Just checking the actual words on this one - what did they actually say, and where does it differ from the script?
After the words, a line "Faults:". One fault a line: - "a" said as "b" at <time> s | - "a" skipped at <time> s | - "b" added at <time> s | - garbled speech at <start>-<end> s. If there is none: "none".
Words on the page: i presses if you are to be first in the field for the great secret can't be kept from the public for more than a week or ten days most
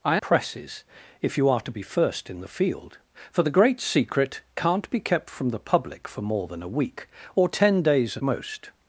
i presses if you are to be first in the field for the great secret can't be kept from the public for more than a week or ten days most
Faults:
none